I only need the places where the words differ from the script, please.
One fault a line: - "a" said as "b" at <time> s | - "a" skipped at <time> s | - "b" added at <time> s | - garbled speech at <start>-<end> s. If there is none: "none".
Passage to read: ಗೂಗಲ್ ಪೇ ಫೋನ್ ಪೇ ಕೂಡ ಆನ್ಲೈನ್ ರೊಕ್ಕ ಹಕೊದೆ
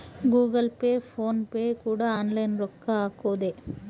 none